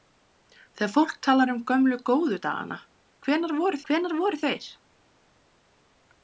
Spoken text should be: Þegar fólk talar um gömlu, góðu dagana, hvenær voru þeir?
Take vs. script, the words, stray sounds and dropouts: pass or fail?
fail